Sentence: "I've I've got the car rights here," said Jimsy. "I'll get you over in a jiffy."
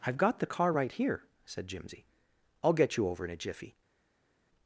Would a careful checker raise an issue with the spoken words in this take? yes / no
yes